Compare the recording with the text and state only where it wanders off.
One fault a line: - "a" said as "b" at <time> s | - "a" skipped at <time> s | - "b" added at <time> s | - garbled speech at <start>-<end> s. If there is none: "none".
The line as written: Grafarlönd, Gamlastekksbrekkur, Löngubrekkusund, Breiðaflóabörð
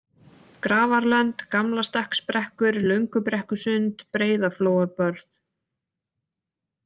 none